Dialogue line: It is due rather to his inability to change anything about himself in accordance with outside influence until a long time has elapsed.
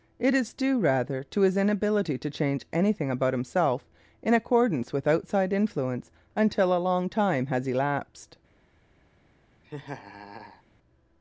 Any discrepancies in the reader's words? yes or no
no